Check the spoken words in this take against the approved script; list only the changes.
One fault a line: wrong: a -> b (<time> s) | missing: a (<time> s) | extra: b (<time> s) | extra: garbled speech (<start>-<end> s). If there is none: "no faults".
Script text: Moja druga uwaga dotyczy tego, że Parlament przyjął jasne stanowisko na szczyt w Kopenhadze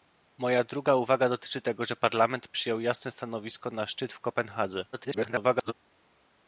extra: garbled speech (4.9-5.7 s)